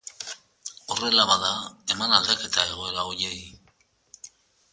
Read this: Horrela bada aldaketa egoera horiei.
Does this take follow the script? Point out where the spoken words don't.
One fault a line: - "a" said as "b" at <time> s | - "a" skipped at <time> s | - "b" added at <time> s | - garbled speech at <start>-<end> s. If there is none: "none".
- "eman" added at 2.0 s